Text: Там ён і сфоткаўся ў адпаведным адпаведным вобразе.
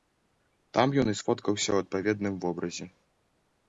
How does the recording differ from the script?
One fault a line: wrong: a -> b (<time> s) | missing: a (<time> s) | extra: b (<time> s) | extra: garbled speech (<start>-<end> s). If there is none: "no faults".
missing: адпаведным (2.3 s)